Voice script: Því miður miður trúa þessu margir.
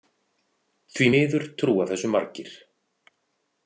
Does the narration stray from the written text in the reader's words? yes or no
yes